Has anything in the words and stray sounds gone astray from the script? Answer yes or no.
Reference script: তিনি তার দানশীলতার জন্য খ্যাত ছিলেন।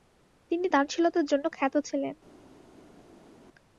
yes